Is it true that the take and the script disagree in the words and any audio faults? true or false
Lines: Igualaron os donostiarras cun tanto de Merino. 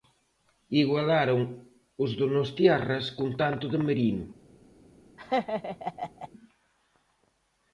true